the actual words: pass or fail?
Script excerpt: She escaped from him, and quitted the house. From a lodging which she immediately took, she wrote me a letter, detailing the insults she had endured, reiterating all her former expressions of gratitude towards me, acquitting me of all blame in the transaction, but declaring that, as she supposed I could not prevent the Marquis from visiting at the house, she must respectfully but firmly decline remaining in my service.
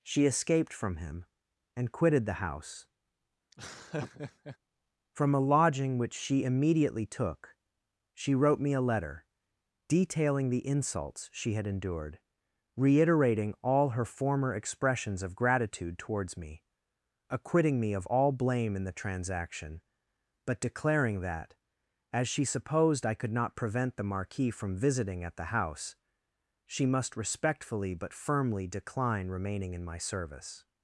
pass